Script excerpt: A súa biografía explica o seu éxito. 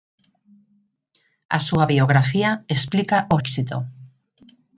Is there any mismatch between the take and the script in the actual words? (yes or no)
yes